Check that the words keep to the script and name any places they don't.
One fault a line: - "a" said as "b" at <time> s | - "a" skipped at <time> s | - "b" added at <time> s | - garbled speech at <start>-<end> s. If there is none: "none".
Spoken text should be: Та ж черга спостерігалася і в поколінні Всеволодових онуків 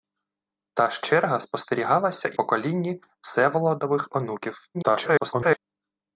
- "в" skipped at 2.4 s
- garbled speech at 4.7-5.6 s